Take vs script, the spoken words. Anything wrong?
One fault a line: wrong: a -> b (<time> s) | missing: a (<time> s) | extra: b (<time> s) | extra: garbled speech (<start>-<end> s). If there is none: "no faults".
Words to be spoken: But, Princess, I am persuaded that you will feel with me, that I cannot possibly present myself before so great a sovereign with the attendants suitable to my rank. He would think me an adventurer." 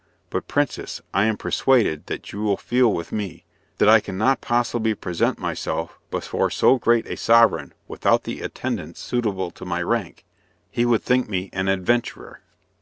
wrong: with -> without (7.9 s)